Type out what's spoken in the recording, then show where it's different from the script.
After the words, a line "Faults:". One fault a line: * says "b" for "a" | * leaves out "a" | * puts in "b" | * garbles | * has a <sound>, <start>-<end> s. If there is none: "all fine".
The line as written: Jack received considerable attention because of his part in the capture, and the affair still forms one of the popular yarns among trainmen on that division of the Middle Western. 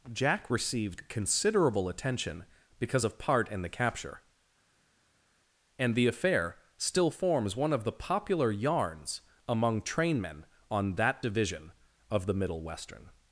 Jack received considerable attention because of part in the capture, and the affair still forms one of the popular yarns among trainmen on that division of the Middle Western.
Faults:
* leaves out "his"